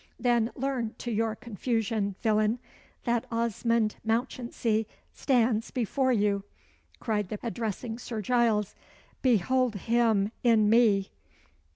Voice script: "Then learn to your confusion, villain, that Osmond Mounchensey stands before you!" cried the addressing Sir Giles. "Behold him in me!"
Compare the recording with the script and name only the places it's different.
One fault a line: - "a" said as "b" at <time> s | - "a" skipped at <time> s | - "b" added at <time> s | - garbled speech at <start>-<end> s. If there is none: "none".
none